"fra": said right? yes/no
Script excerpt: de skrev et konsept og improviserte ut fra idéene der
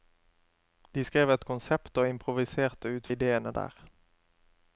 no